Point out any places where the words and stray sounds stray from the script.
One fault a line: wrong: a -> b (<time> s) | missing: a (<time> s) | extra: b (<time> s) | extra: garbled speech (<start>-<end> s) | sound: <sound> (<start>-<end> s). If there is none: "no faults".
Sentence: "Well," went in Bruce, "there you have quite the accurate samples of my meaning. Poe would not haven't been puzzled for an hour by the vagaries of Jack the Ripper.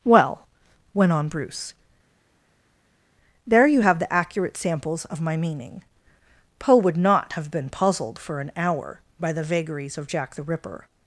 wrong: in -> on (1.1 s)
missing: quite (4.0 s)
wrong: haven't -> have (7.3 s)